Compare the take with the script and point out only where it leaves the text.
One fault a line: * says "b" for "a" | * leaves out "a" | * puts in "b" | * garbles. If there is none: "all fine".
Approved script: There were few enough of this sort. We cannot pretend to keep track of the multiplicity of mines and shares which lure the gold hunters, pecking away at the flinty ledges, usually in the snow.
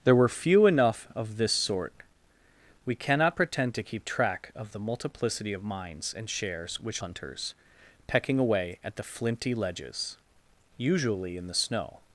* leaves out "lure the gold"